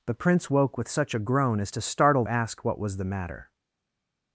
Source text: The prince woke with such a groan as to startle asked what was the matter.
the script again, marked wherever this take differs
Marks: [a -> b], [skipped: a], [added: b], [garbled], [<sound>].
The prince woke with such a groan as to startle asked what was the matter.